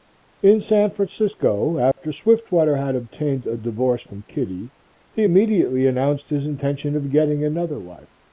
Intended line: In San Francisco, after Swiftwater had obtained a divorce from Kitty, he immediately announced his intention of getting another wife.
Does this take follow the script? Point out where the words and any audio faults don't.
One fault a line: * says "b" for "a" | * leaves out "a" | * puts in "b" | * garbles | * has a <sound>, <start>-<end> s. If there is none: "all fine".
* has a dropout, 1.9-2.0 s